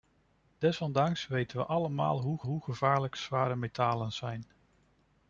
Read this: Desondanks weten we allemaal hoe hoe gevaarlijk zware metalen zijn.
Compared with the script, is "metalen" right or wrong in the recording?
right